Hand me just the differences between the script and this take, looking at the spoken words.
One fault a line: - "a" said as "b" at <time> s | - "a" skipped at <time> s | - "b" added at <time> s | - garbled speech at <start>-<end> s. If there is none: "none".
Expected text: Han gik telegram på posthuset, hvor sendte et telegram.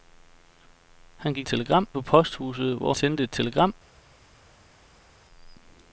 none